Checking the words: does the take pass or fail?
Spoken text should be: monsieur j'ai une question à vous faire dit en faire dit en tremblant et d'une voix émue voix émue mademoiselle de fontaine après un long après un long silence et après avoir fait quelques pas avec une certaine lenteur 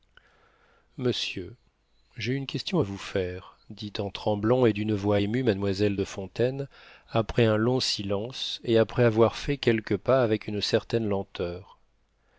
fail